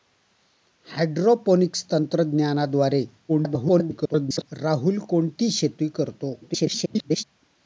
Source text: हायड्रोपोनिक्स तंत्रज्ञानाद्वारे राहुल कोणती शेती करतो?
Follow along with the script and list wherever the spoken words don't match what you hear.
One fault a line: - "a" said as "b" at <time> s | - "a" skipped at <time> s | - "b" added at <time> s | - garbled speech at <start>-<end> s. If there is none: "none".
- garbled speech at 3.3-4.5 s
- garbled speech at 6.4-7.2 s